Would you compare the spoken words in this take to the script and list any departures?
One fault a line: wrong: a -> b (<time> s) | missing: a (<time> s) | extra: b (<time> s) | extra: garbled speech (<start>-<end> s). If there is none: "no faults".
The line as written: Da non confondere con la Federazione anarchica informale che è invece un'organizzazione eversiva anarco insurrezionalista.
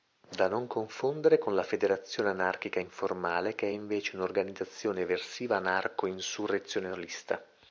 no faults